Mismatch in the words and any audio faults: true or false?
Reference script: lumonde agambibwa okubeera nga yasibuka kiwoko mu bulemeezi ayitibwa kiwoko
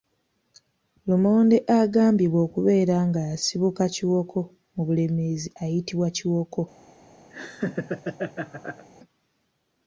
true